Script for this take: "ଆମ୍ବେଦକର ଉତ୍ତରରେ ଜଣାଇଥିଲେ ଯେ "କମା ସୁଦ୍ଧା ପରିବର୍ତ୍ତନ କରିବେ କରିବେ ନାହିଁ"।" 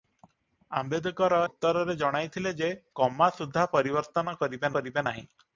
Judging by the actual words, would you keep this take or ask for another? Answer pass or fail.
pass